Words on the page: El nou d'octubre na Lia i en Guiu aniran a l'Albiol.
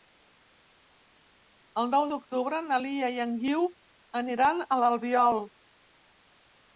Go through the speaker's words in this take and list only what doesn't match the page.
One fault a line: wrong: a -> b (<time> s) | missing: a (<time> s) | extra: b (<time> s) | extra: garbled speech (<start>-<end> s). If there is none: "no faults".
no faults